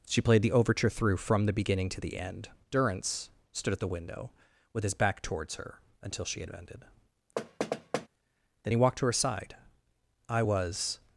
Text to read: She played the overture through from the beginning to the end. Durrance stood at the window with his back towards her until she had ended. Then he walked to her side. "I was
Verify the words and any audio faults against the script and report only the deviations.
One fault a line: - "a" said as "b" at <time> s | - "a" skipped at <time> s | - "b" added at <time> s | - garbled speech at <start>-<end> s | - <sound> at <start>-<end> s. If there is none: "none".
- thud at 7.4-8.1 s